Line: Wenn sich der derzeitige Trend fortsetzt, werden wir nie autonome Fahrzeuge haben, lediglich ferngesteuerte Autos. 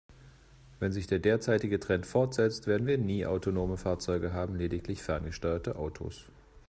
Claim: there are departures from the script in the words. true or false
false